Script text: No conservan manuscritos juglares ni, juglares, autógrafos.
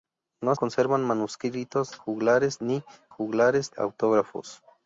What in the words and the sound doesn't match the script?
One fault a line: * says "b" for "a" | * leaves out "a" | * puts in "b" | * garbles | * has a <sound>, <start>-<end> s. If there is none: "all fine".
all fine